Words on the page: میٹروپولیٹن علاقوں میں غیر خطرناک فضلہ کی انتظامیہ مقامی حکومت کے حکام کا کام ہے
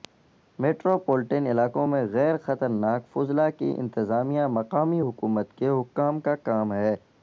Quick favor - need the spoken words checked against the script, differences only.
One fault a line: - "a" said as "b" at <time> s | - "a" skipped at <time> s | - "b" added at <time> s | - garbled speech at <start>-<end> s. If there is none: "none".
none